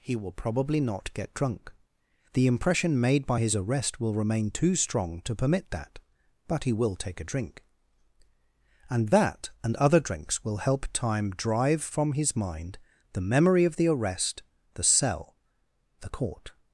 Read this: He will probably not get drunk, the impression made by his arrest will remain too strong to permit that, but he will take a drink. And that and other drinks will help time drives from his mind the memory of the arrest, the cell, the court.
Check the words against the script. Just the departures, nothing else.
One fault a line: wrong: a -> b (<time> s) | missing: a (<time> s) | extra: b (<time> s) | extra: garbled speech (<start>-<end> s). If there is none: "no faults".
wrong: drives -> drive (11.3 s)